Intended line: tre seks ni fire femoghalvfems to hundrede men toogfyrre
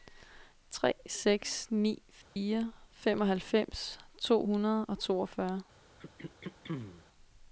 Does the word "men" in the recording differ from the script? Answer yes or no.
yes